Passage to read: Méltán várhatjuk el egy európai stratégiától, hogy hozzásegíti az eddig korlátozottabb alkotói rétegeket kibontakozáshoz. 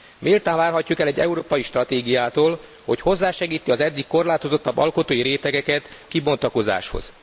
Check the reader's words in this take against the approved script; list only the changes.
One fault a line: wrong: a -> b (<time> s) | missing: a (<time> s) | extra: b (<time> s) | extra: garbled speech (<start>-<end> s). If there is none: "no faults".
no faults